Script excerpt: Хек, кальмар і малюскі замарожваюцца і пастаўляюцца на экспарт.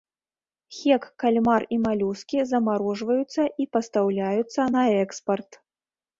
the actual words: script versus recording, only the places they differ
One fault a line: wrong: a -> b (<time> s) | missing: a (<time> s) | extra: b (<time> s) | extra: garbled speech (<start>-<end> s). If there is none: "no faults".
no faults